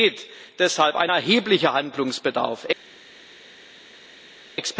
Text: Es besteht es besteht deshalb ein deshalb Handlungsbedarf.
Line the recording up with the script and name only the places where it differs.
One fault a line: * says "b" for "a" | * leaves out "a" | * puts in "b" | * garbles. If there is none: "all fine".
* leaves out "es besteht"
* says "erheblicher" for "deshalb"